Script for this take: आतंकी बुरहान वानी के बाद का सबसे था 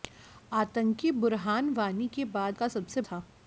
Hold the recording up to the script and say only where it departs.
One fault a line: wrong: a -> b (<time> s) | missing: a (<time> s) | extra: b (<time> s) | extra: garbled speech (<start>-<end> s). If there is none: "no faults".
no faults